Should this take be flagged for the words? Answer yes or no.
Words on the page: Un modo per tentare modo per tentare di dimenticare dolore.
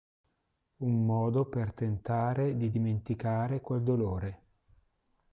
yes